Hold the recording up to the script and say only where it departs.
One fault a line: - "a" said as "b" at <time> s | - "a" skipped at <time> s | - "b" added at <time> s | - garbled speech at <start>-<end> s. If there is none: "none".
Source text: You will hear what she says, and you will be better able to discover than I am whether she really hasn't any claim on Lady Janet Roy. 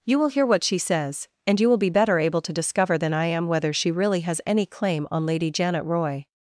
- "hasn't" said as "has" at 4.2 s